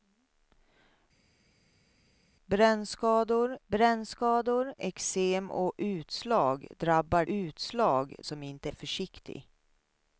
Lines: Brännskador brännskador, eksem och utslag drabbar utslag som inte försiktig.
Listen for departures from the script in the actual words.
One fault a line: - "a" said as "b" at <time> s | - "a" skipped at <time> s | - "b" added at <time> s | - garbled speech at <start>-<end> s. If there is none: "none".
none